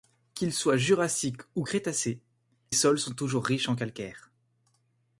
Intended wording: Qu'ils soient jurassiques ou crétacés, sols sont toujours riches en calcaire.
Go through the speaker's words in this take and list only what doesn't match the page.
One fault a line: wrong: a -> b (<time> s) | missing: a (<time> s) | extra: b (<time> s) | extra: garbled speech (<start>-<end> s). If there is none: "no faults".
no faults